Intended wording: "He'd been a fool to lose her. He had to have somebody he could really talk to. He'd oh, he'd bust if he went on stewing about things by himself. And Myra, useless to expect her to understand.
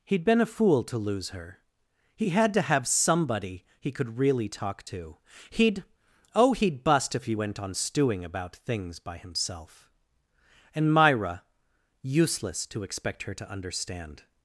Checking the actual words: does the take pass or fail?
pass